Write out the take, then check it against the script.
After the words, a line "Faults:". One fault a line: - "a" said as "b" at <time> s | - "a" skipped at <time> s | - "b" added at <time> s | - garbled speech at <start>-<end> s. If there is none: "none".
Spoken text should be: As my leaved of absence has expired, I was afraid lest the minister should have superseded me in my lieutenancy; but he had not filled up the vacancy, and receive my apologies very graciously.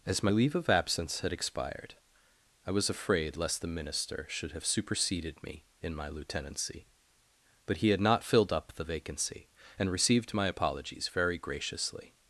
As my leave of absence had expired, I was afraid lest the minister should have superseded me in my lieutenancy; but he had not filled up the vacancy, and received my apologies very graciously.
Faults:
- "leaved" said as "leave" at 0.3 s
- "has" said as "had" at 1.2 s
- "receive" said as "received" at 9.9 s